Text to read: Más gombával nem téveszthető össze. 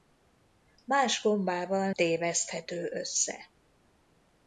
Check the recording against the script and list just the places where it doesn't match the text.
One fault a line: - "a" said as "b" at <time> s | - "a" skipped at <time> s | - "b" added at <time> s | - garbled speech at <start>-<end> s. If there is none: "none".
- "nem" skipped at 1.9 s